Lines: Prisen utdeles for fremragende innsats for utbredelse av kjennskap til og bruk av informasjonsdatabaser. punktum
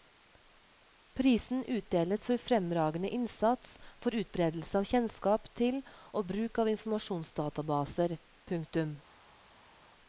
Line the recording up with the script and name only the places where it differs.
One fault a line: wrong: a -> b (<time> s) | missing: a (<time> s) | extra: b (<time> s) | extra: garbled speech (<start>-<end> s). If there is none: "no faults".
no faults